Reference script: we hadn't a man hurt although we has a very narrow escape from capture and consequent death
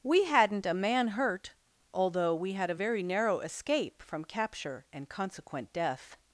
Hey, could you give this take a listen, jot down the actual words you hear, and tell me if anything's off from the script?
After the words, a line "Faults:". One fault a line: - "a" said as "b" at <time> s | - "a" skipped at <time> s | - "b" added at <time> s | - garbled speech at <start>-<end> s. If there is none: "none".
we hadn't a man hurt although we had a very narrow escape from capture and consequent death
Faults:
- "has" said as "had" at 2.5 s